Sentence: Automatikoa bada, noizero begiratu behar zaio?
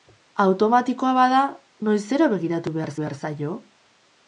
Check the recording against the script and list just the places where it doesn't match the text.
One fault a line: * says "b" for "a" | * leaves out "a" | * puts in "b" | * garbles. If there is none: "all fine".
* puts in "behar"